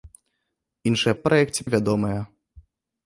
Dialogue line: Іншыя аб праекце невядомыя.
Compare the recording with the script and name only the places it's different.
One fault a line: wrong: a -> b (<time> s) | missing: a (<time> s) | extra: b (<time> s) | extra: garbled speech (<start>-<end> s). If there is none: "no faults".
no faults